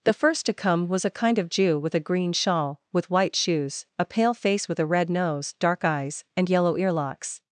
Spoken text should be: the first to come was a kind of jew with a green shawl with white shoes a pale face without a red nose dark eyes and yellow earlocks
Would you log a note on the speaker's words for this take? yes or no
yes